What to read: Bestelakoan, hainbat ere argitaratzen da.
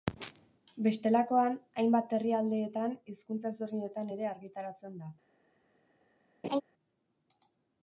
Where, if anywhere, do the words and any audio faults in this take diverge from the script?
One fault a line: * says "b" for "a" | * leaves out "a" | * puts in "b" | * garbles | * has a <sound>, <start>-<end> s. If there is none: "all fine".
* puts in "herrialdeetan hizkuntza ezberdinetan"
* has a laugh, 6.4-6.6 s